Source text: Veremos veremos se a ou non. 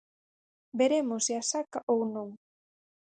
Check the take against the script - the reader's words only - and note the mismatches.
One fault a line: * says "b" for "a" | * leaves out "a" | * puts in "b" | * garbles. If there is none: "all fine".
* leaves out "veremos"
* puts in "saca"